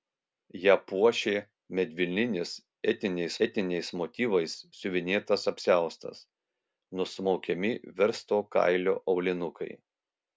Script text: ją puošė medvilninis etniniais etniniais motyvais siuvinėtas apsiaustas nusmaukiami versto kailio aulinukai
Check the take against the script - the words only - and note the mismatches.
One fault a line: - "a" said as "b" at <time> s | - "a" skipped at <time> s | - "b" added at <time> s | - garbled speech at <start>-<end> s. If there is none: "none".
none